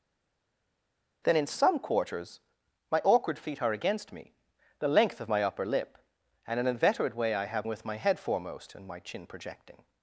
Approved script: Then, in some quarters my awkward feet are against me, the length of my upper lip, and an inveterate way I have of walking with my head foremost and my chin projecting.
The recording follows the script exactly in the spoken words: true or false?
false